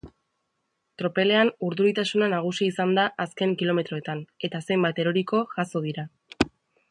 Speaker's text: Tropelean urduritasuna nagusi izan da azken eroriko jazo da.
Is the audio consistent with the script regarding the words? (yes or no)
no